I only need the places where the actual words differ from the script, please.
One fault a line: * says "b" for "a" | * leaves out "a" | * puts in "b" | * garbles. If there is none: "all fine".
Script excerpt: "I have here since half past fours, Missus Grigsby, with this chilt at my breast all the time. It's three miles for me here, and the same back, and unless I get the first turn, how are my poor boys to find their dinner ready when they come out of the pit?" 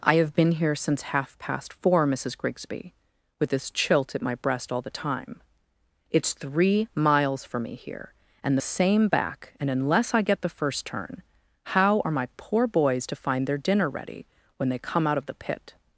* puts in "been"
* says "four" for "fours"